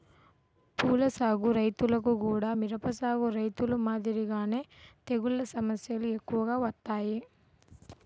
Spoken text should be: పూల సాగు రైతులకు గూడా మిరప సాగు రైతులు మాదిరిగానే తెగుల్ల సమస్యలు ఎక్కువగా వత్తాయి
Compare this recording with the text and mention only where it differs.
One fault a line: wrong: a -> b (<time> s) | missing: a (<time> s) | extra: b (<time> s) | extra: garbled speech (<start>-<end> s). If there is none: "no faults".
no faults